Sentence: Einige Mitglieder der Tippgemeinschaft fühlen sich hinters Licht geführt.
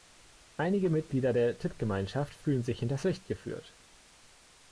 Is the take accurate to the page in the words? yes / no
yes